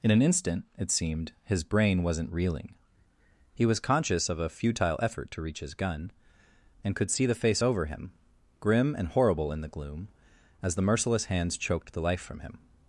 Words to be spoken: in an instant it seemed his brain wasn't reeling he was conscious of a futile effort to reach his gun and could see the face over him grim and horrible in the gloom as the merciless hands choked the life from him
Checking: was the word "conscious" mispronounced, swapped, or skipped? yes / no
no